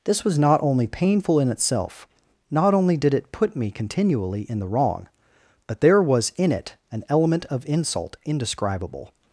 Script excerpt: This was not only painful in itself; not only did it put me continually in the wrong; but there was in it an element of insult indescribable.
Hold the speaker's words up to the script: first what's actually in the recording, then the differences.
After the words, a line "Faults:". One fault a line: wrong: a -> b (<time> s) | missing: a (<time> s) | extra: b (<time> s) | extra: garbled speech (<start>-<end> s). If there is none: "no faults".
This was not only painful in itself; not only did it put me continually in the wrong; but there was in it an element of insult indescribable.
Faults:
no faults